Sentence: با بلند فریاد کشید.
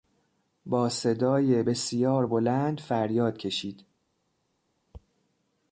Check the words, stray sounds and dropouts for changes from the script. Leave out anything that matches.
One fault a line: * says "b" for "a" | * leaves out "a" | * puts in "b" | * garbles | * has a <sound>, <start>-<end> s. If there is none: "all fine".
* puts in "صدای بسیار"